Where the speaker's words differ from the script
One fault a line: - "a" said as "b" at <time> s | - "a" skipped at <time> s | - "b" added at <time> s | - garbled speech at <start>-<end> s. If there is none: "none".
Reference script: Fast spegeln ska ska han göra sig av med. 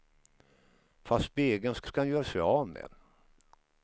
none